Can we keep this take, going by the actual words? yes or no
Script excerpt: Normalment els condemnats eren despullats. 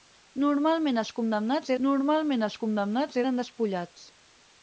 no